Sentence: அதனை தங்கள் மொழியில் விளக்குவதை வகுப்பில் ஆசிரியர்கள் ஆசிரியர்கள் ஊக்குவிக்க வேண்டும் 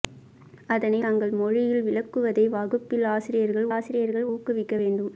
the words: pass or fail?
pass